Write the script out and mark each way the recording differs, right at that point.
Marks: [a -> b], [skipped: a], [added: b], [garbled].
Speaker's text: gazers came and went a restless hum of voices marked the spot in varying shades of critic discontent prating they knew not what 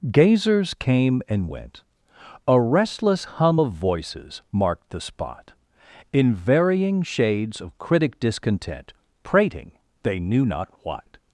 gazers came and went a restless hum of voices marked the spot in varying shades of critic discontent prating they knew not what